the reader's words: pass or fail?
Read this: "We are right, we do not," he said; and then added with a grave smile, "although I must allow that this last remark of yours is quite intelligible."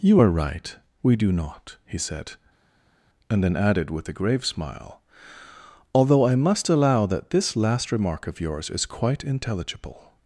fail